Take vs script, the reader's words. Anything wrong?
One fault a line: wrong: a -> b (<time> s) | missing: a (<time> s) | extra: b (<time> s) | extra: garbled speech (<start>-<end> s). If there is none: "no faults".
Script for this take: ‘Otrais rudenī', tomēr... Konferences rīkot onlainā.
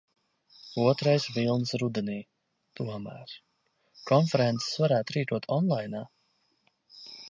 extra: vilnis (1.4 s)
extra: varētu (4.8 s)